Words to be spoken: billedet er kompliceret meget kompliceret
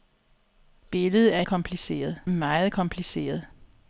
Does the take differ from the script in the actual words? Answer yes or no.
no